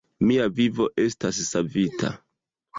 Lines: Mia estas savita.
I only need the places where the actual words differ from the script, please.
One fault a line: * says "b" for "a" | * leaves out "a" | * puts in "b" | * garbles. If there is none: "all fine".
* puts in "vivo"